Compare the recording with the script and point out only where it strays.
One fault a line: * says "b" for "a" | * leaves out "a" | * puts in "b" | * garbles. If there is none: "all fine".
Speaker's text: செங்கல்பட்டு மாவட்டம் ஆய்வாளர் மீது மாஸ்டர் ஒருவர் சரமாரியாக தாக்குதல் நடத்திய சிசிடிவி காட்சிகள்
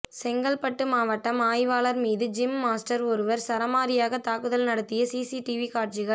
* puts in "ஜிம்"